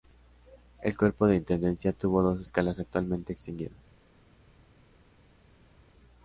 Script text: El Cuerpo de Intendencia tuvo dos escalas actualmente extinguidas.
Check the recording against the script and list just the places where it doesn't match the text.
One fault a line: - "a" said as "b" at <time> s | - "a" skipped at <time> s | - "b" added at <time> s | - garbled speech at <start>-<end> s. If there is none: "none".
none